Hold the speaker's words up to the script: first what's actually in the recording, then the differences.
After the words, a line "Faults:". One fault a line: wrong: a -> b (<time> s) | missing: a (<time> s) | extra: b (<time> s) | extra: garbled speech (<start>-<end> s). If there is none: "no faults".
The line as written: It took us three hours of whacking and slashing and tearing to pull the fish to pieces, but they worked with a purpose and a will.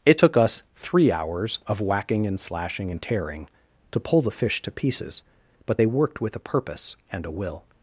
It took us three hours of whacking and slashing and tearing to pull the fish to pieces, but they worked with a purpose and a will.
Faults:
no faults